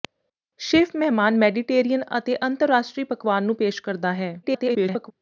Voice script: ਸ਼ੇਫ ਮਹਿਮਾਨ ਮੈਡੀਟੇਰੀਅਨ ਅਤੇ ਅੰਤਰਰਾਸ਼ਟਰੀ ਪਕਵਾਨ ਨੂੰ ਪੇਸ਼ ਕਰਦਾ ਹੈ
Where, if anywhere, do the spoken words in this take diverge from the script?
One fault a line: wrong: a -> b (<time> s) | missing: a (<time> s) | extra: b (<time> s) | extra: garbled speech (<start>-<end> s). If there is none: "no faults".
extra: garbled speech (4.4-5.1 s)